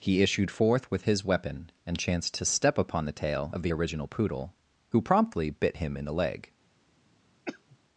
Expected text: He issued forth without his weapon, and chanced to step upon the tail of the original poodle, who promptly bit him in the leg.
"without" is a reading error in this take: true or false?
true